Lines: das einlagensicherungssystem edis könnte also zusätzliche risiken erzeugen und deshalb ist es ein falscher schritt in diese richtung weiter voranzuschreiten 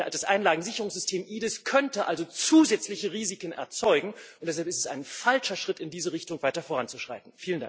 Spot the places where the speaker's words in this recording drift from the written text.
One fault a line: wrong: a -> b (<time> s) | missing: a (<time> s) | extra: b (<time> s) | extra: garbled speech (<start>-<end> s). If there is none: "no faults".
no faults